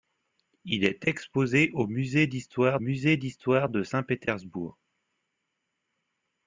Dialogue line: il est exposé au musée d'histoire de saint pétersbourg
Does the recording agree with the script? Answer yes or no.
no